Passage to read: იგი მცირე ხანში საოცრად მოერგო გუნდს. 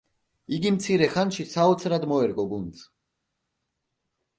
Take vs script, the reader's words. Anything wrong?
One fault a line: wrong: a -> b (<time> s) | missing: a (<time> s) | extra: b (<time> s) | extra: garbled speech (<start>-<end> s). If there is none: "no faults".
no faults